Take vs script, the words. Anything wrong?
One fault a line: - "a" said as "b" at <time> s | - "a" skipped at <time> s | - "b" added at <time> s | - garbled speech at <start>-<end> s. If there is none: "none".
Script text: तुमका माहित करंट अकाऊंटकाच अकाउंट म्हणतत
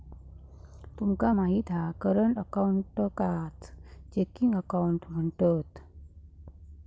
- "हा" added at 1.7 s
- "चेकिंग" added at 4.1 s